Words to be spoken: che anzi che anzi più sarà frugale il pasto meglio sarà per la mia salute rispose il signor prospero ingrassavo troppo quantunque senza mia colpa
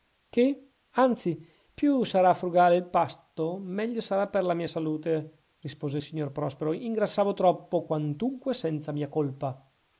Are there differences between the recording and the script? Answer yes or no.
yes